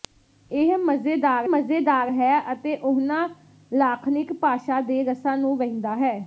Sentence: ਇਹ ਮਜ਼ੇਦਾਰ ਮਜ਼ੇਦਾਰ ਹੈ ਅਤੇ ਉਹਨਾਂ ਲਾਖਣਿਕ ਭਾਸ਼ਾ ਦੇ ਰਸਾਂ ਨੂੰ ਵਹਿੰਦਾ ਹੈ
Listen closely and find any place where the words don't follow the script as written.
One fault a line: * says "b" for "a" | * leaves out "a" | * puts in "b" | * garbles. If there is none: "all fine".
all fine